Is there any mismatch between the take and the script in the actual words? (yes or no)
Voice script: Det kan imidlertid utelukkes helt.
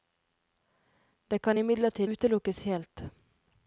no